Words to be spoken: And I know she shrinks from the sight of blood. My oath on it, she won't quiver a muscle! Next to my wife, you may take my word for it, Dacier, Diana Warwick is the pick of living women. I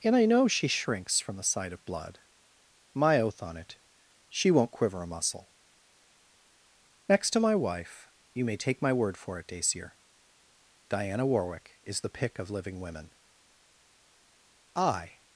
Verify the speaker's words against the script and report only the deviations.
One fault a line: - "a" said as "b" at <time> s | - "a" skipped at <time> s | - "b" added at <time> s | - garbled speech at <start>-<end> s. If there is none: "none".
none